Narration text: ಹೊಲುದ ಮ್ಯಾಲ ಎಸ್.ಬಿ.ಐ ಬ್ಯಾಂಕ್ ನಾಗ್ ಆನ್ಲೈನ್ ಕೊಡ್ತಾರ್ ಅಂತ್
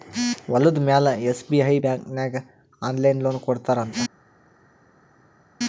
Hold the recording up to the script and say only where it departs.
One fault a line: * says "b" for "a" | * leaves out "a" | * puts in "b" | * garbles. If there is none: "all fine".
* puts in "ಲೋನ್"